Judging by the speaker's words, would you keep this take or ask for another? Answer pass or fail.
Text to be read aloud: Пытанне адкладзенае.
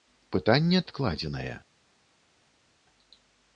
pass